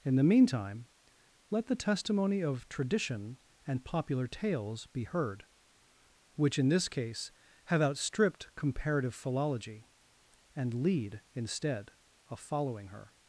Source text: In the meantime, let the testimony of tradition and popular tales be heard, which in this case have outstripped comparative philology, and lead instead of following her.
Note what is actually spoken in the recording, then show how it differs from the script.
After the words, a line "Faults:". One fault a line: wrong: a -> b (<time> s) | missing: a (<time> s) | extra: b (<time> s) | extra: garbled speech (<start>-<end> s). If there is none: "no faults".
In the meantime, let the testimony of tradition and popular tales be heard, which in this case have outstripped comparative philology, and lead instead of following her.
Faults:
no faults